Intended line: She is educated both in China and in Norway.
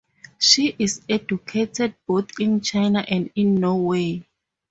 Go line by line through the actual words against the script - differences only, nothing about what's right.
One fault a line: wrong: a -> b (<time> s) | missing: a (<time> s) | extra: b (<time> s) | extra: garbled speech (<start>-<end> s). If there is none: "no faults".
no faults